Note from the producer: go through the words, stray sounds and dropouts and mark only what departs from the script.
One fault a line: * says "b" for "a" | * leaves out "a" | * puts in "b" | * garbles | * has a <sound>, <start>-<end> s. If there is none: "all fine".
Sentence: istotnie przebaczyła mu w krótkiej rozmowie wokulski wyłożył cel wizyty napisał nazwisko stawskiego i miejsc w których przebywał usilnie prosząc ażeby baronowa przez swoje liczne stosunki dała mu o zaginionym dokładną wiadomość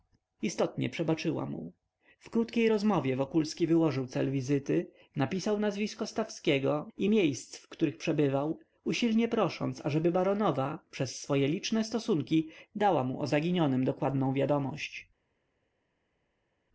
all fine